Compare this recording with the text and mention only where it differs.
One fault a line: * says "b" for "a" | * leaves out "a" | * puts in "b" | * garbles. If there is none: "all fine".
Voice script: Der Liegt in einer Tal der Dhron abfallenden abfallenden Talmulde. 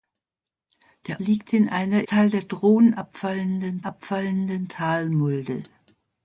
all fine